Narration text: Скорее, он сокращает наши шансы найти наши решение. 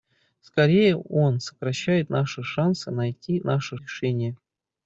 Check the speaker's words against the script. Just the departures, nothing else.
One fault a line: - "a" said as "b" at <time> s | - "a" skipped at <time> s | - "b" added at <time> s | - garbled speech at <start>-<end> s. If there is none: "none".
none